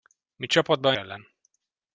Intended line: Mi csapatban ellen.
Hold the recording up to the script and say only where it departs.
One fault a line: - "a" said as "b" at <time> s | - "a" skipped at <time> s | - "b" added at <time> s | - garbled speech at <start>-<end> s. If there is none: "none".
none